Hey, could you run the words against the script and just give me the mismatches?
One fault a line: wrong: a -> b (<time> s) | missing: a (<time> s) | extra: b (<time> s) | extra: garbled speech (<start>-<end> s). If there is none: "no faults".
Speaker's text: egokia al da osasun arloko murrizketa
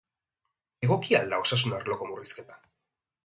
no faults